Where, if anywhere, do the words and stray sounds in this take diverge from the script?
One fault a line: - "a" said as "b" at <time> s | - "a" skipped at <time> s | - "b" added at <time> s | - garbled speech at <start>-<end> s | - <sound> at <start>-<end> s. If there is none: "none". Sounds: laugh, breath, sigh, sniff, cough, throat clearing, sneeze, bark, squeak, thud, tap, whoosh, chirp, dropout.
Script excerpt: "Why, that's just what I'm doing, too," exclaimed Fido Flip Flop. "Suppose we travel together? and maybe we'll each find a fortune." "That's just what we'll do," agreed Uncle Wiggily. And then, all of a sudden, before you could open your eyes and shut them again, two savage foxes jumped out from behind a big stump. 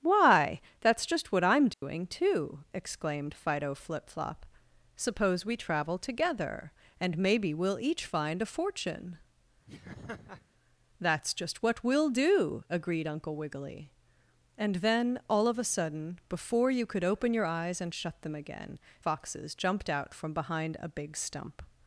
- dropout at 1.7-1.8 s
- laugh at 9.7-10.5 s
- "two savage" skipped at 18.8 s